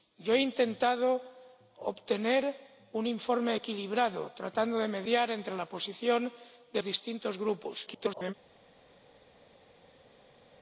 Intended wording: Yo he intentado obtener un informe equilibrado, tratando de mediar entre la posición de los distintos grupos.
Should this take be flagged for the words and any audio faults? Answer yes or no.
yes